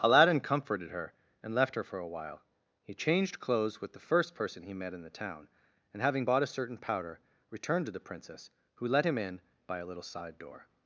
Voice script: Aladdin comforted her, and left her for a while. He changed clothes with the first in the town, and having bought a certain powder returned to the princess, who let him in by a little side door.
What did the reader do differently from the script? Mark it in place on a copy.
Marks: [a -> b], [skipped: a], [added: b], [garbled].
Aladdin comforted her, and left her for a while. He changed clothes with the first [added: person he met] in the town, and having bought a certain powder returned to the princess, who let him in by a little side door.